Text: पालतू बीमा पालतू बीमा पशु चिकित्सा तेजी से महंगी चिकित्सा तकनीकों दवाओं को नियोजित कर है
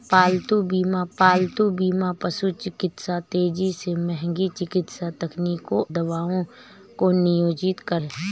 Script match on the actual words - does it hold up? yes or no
yes